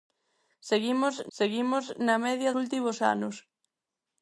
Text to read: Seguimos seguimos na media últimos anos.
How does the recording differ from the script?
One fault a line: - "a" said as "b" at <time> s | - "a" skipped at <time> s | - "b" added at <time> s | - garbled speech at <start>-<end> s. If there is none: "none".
none